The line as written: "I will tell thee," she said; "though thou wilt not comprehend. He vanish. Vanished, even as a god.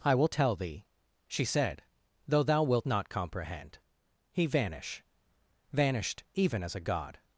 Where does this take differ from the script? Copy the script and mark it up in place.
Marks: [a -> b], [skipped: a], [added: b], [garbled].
"I will tell thee," she said; "though thou wilt not comprehend. He vanish. Vanished, even as a god.